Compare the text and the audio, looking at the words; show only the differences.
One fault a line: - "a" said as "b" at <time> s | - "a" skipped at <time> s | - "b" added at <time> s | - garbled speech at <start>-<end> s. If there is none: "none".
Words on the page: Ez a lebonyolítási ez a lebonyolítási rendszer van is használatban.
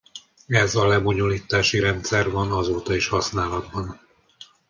- "ez a lebonyolítási" skipped at 1.8 s
- "azóta" added at 2.5 s